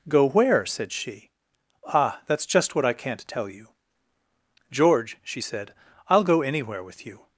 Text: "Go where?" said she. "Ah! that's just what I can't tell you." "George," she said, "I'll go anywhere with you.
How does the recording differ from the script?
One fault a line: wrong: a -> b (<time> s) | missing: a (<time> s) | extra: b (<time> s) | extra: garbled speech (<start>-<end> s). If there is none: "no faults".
no faults